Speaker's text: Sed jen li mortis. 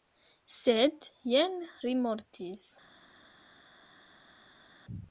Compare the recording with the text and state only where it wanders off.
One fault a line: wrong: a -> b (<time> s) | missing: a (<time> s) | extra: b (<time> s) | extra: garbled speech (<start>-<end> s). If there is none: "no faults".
no faults